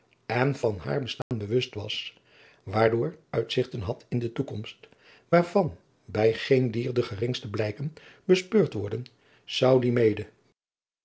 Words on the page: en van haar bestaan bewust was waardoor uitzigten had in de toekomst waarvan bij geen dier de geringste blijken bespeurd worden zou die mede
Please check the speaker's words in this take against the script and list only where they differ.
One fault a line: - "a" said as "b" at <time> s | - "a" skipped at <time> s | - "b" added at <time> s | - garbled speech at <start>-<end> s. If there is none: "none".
none